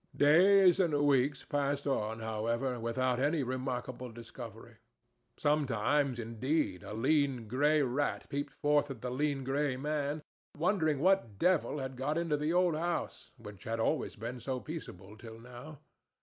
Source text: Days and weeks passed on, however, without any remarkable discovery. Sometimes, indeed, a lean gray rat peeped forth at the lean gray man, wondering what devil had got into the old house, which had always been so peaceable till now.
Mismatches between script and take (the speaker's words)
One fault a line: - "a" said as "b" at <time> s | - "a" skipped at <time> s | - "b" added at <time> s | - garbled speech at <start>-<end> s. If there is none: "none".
none